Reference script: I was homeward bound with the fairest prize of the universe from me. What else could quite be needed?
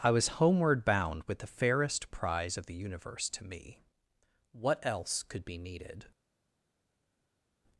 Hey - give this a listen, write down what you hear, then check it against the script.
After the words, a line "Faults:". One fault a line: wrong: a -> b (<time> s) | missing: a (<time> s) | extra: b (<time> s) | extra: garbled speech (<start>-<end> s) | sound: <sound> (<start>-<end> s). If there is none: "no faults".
I was homeward bound with the fairest prize of the universe to me. What else could be needed?
Faults:
wrong: from -> to (3.3 s)
missing: quite (5.4 s)